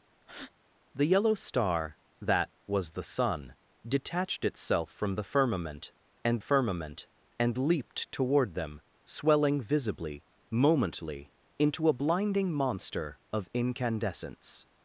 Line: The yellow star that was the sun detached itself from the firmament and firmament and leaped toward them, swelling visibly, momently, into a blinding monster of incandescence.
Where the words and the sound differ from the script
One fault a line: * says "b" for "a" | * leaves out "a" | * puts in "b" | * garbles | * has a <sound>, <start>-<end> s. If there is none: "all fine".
* has a breath, 0.2-0.5 s